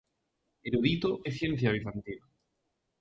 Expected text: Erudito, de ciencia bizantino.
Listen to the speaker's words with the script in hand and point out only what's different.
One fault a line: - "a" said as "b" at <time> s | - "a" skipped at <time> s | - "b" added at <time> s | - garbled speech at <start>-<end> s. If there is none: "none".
none